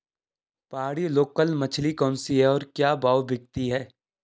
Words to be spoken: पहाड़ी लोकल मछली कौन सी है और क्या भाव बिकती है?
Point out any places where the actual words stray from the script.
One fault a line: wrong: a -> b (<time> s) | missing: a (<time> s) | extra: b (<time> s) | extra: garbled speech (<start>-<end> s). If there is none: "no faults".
no faults